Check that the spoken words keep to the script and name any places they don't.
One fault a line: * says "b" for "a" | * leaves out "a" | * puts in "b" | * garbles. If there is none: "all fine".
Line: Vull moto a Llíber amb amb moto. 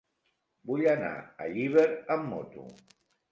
* says "anar" for "moto"
* leaves out "amb"